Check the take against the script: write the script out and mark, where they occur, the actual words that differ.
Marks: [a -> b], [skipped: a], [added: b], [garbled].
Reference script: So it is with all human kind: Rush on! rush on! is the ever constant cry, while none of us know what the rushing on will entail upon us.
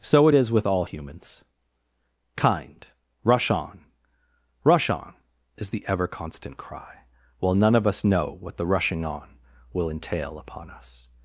So it is with all [human -> humans] kind: Rush on! rush on! is the ever constant cry, while none of us know what the rushing on will entail upon us.